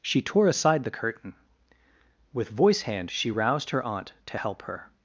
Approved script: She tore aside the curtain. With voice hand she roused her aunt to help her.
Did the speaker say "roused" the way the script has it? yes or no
yes